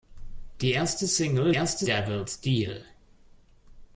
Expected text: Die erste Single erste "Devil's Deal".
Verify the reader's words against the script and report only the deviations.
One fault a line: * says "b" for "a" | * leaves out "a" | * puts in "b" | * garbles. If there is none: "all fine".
all fine